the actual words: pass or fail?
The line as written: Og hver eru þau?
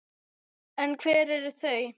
fail